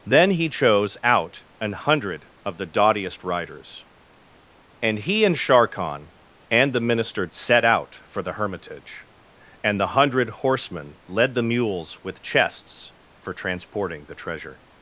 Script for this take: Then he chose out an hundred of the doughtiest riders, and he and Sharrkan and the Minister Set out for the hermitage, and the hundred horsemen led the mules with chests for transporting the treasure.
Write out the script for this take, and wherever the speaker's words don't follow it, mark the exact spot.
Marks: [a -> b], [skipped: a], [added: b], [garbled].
Then he chose out an hundred of the doughtiest riders, and he and Sharrkan and the Minister Set out for the hermitage, and the hundred horsemen led the mules with chests for transporting the treasure.